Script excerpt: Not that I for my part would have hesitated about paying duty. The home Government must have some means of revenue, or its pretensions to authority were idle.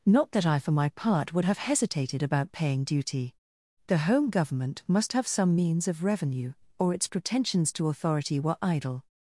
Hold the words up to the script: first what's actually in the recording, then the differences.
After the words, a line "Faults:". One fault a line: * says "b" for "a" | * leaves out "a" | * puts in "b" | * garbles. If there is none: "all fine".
Not that I for my part would have hesitated about paying duty. The home Government must have some means of revenue, or its pretensions to authority were idle.
Faults:
all fine